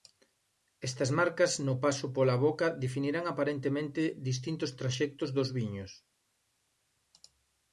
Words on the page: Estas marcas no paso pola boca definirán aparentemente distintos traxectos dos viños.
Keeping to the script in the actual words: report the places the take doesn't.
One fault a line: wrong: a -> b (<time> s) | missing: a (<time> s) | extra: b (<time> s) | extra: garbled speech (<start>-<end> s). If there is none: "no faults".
no faults